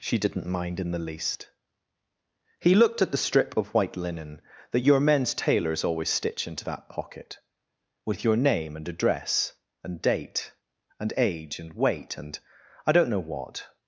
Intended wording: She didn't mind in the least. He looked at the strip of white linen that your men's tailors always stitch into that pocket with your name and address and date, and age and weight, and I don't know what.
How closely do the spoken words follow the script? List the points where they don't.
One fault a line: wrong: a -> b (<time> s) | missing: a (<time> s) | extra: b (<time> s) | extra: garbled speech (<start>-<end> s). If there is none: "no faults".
no faults